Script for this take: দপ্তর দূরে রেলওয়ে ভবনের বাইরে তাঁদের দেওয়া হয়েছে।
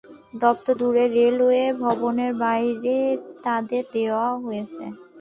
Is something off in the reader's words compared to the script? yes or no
no